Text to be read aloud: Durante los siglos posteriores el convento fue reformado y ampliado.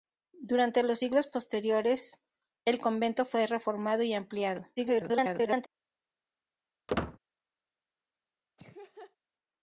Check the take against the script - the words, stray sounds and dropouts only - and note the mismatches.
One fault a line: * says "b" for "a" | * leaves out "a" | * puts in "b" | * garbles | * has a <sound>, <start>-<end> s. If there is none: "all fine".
* garbles
* has a squeak, 6.9-7.2 s
* has a laugh, 8.6-9.2 s